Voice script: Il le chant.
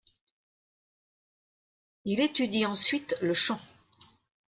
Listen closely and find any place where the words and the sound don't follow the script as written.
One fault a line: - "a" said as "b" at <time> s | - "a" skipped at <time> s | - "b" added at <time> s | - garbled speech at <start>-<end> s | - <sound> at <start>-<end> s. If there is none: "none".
- "étudie ensuite" added at 2.2 s